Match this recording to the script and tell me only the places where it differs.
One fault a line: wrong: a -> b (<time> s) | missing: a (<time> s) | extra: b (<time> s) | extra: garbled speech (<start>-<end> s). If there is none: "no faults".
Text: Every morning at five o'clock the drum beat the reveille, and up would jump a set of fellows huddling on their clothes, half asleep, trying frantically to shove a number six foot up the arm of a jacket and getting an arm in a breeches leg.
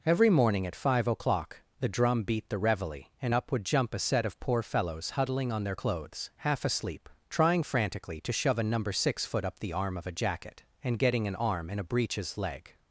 extra: poor (4.4 s)